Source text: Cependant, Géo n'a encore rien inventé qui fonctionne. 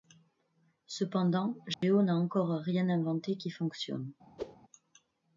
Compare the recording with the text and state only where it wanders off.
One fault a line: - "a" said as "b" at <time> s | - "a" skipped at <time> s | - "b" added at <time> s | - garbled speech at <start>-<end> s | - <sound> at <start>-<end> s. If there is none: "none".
- dropout at 1.7-1.8 s
- whoosh at 4.4-4.6 s